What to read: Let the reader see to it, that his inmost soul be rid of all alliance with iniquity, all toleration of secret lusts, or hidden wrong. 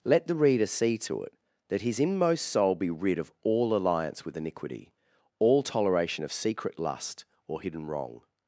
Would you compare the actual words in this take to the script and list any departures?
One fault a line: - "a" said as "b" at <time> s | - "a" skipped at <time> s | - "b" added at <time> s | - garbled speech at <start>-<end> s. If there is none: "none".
- "lusts" said as "lust" at 6.8 s